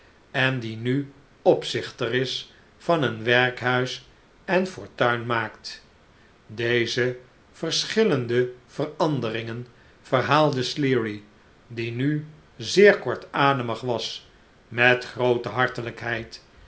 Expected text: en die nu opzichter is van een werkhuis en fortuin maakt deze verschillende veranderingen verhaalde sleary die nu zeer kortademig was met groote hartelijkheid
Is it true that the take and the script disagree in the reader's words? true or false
false